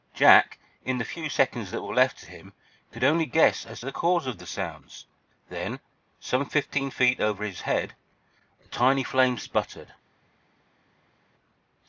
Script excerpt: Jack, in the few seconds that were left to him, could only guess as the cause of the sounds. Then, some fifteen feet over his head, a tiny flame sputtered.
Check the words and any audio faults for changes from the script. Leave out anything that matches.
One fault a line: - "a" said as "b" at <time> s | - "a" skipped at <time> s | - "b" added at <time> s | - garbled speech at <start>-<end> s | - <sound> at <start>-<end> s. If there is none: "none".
none